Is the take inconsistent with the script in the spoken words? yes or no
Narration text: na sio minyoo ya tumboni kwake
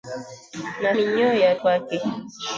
yes